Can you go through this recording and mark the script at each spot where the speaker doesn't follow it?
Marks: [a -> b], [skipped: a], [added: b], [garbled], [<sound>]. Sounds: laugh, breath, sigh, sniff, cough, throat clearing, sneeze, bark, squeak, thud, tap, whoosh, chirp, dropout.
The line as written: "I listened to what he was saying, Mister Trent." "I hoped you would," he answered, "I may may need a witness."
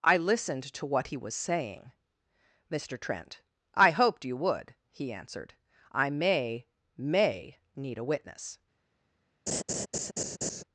"I listened to what he was saying, Mister Trent." "I hoped you would," he answered, "I may may need a witness." [laugh]